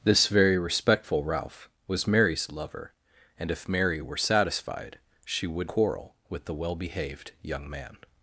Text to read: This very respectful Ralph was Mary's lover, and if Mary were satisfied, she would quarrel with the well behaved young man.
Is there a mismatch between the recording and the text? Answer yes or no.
no